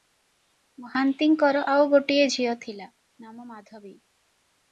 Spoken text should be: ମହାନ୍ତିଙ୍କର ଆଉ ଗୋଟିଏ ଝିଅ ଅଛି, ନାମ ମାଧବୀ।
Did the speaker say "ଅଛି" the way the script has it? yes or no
no